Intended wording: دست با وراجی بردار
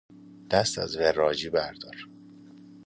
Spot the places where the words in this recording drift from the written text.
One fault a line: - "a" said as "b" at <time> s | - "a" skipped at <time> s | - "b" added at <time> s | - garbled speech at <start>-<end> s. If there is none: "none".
- "با" said as "از" at 0.8 s